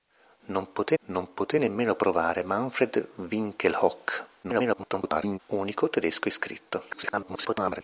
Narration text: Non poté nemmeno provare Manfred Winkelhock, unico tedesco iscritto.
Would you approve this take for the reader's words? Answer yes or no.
no